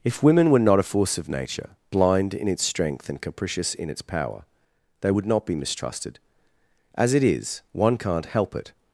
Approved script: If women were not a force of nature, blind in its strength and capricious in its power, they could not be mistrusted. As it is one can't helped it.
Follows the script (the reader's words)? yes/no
no